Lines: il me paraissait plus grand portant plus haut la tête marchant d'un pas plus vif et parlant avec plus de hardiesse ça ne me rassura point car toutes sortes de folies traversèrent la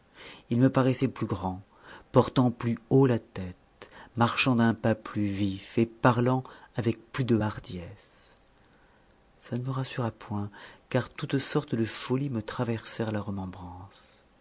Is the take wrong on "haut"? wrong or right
right